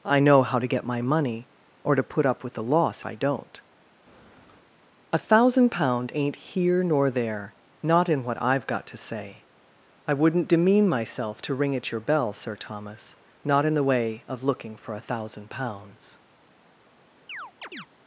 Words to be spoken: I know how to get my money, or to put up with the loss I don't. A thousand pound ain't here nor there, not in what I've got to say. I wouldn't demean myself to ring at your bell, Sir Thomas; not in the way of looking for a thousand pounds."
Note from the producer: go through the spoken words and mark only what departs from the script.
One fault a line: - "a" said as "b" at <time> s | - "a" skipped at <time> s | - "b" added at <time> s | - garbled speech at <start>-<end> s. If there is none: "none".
none